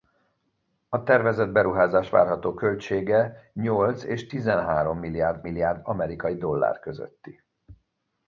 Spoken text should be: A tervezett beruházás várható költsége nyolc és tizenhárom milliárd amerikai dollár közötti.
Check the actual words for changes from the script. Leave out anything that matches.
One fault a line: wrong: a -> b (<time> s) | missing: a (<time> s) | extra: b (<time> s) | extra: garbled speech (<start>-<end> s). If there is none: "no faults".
extra: milliárd (5.4 s)